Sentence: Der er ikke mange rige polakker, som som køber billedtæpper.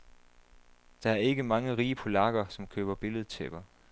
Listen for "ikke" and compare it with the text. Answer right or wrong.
right